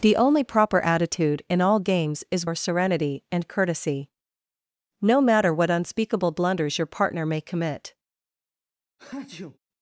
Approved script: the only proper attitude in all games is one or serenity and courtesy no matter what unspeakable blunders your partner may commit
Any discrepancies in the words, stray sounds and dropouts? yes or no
yes